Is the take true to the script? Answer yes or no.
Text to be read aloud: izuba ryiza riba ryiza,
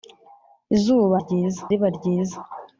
yes